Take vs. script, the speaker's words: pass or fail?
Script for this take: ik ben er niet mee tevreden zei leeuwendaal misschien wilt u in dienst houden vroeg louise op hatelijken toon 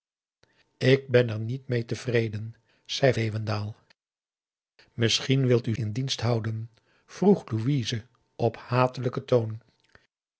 pass